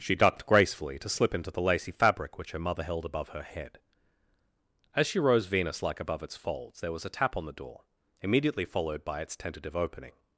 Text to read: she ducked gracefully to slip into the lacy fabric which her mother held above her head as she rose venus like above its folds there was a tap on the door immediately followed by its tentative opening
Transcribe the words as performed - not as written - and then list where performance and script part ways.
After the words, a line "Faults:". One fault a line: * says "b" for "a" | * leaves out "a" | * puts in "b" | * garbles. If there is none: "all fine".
she ducked gracefully to slip into the lacy fabric which her mother held above her head as she rose venus like above its folds there was a tap on the door immediately followed by its tentative opening
Faults:
all fine